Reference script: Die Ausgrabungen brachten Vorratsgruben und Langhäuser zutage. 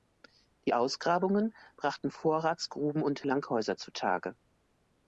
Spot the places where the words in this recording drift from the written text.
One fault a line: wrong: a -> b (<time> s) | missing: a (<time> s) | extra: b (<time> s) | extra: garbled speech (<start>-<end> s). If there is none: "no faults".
no faults